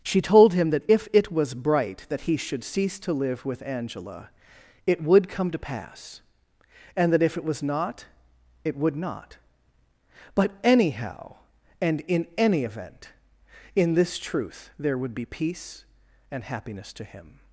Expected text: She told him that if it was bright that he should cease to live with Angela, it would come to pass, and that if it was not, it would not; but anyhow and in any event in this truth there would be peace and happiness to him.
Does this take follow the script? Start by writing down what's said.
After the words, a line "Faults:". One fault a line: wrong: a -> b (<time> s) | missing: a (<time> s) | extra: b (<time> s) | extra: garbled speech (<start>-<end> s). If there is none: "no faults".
She told him that if it was bright that he should cease to live with Angela, it would come to pass, and that if it was not, it would not; but anyhow and in any event in this truth there would be peace and happiness to him.
Faults:
no faults